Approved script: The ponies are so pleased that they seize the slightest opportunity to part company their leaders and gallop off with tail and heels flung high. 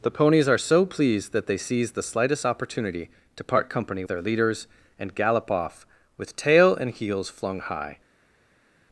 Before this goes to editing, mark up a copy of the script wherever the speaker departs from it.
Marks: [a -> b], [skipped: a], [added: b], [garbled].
The ponies are so pleased that they seize the slightest opportunity to part company their leaders and gallop off with tail and heels flung high.